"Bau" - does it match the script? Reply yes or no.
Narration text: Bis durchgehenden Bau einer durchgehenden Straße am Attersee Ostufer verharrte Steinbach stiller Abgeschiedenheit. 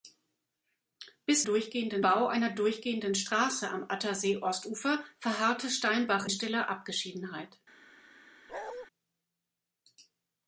yes